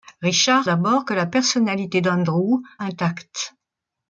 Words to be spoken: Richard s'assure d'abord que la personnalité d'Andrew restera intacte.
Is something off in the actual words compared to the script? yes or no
yes